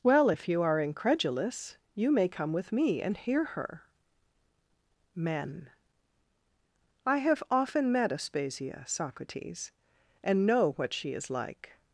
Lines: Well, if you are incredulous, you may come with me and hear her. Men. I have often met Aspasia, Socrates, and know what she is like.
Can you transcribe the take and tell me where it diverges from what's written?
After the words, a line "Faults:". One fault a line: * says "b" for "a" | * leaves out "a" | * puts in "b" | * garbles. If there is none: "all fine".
Well, if you are incredulous, you may come with me and hear her. Men. I have often met Aspasia, Socrates, and know what she is like.
Faults:
all fine